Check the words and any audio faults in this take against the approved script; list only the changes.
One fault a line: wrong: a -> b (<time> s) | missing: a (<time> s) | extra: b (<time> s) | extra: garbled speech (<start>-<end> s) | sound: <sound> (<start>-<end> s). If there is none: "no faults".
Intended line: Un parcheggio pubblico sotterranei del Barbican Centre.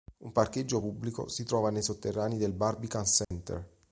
extra: si trova nei (1.3 s)
sound: dropout (3.2-3.3 s)